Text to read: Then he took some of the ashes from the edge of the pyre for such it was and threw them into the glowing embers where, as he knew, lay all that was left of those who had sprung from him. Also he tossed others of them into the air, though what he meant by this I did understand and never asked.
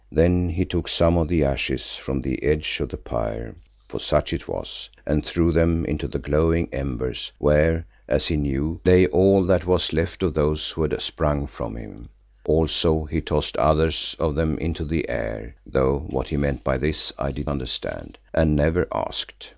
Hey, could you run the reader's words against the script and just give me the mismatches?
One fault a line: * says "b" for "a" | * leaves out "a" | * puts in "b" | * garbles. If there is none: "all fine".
all fine